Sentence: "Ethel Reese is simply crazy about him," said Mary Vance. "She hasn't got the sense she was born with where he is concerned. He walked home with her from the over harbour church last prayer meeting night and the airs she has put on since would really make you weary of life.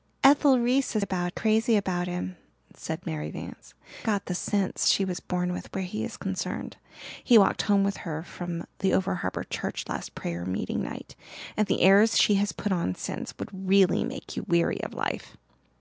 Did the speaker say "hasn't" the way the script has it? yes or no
no